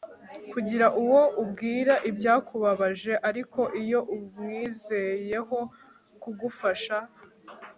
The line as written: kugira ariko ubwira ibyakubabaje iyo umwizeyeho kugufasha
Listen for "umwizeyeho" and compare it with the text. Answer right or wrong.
right